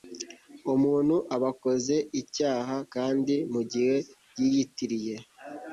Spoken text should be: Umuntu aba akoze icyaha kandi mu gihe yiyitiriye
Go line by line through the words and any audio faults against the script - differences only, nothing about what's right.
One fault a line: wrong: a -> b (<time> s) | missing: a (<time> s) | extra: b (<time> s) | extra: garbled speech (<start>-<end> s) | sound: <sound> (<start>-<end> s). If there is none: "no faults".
no faults